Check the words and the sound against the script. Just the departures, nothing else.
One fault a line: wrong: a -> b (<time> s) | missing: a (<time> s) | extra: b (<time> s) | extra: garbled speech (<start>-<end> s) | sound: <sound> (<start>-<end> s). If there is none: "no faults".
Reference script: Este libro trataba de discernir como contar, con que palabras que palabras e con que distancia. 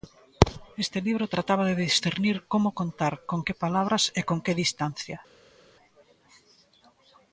missing: que palabras (4.0 s)